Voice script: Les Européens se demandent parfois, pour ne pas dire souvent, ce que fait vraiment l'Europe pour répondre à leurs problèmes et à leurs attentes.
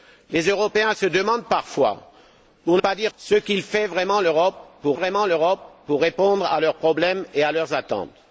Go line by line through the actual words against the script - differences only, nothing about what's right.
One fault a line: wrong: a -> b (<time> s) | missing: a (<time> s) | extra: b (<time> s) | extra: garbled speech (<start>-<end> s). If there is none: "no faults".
missing: ne (2.8 s)
missing: souvent (3.1 s)
extra: vraiment l'Europe pour (4.9 s)